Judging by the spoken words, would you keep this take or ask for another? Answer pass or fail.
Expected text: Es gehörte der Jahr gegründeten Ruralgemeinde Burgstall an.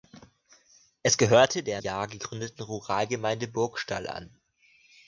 pass